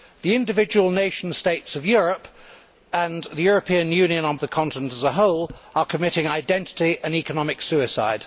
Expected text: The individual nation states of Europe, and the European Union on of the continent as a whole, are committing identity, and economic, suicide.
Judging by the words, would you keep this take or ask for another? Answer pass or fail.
pass